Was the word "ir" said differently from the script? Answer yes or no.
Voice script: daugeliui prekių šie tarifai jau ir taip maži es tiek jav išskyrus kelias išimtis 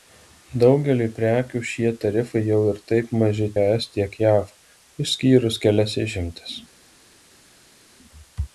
no